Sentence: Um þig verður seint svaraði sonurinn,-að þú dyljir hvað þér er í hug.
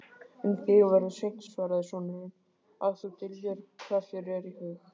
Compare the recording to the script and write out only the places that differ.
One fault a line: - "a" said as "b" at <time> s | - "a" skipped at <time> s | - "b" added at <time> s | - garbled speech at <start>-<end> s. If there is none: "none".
none